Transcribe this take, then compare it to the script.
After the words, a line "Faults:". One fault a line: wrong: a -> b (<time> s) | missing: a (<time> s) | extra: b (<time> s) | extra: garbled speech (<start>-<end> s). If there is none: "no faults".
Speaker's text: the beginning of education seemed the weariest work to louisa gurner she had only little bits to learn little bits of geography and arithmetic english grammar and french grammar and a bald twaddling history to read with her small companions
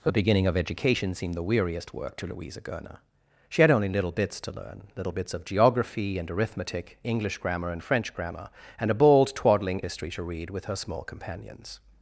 the beginning of education seemed the weariest work to louisa gurner she had only little bits to learn little bits of geography and arithmetic english grammar and french grammar and a bald twaddling history to read with her small companions
Faults:
no faults